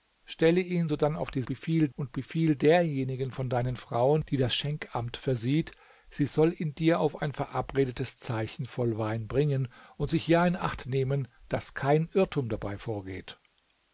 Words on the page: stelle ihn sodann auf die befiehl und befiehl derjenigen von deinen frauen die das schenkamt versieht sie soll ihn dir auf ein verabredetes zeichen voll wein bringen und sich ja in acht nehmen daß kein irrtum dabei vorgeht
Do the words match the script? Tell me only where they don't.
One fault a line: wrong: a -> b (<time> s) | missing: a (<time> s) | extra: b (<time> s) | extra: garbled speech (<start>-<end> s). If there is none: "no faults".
no faults